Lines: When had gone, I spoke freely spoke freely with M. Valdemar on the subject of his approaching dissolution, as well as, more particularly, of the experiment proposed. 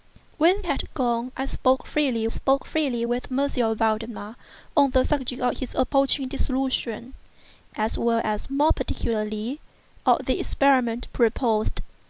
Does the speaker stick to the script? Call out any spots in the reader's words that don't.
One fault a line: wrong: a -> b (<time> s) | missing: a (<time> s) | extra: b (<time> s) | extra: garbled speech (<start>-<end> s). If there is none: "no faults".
no faults